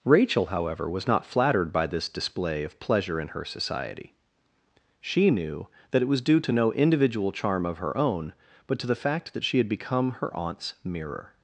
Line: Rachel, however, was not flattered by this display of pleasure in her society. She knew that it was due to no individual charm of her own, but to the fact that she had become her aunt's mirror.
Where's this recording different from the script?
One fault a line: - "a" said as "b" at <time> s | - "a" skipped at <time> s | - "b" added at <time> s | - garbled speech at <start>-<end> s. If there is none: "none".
none